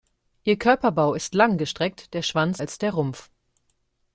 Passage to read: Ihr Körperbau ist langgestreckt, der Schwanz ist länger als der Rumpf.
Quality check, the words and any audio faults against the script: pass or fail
fail